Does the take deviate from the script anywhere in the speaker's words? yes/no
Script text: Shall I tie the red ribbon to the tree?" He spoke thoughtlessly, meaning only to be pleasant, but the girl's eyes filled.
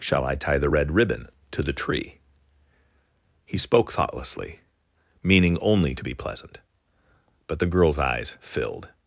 no